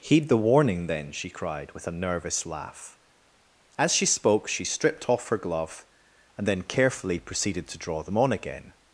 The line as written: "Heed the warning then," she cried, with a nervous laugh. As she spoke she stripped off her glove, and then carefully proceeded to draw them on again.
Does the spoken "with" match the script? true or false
true